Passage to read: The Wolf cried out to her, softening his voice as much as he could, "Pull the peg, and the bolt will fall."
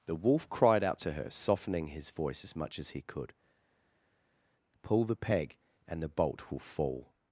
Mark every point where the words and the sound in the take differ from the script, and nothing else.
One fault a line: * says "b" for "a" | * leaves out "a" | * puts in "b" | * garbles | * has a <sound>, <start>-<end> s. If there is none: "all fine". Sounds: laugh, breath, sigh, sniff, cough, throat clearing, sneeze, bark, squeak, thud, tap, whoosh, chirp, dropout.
all fine